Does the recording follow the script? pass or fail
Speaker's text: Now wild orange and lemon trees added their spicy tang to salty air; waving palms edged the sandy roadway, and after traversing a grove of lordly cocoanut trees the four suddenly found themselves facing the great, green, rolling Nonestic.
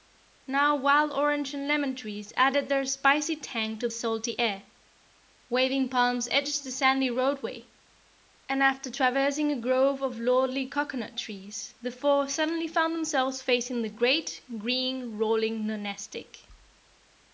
pass